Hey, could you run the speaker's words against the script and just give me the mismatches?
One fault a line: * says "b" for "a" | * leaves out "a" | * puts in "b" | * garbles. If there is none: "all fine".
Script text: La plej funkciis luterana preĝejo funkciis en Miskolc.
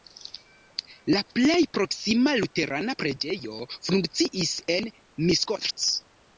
* says "proksima" for "funkciis"